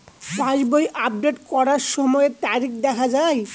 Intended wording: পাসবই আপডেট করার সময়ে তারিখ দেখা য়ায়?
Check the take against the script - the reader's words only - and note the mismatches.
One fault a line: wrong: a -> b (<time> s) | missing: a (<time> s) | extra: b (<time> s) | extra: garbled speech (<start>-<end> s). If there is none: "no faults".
no faults